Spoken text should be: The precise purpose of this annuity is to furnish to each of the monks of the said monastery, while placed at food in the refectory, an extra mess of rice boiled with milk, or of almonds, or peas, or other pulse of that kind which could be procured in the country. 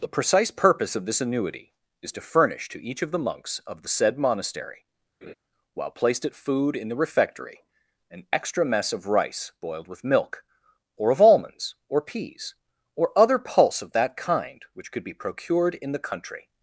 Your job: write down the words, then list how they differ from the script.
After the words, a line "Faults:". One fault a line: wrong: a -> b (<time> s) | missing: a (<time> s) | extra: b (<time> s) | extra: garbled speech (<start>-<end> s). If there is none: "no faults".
The precise purpose of this annuity is to furnish to each of the monks of the said monastery, while placed at food in the refectory, an extra mess of rice boiled with milk, or of almonds, or peas, or other pulse of that kind which could be procured in the country.
Faults:
no faults